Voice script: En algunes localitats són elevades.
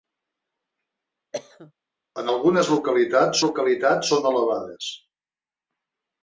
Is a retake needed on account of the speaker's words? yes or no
yes